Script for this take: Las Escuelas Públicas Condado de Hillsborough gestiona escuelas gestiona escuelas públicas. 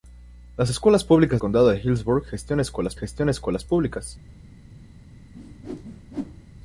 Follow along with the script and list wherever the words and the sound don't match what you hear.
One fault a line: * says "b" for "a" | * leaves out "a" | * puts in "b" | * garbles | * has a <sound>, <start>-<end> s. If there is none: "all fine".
* has a whoosh, 5.3-6.5 s